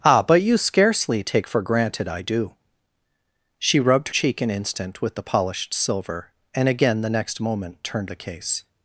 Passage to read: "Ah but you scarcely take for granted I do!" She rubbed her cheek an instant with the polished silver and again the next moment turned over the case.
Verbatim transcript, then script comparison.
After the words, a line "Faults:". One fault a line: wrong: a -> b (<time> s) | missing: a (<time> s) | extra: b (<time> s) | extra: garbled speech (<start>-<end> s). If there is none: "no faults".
"Ah but you scarcely take for granted I do!" She rubbed cheek an instant with the polished silver and again the next moment turned the case.
Faults:
missing: her (4.1 s)
missing: over (8.1 s)